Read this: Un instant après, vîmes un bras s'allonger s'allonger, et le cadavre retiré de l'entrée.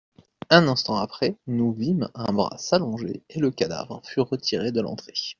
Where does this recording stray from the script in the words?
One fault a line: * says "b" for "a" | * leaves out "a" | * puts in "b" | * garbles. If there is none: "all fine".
* puts in "nous"
* leaves out "s'allonger"
* puts in "fut"